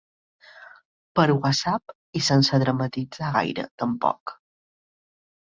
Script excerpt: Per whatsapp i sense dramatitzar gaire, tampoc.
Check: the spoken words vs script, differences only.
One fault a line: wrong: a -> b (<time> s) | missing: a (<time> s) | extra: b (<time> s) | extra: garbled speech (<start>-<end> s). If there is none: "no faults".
no faults